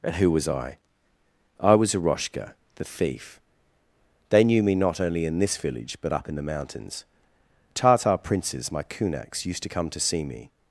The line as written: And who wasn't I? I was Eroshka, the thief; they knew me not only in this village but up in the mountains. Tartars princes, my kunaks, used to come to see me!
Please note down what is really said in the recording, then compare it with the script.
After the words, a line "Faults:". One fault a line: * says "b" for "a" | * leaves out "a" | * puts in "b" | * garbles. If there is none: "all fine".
And who was I? I was Eroshka, the thief; they knew me not only in this village but up in the mountains. Tartar princes, my kunaks, used to come to see me!
Faults:
* says "was" for "wasn't"
* says "Tartar" for "Tartars"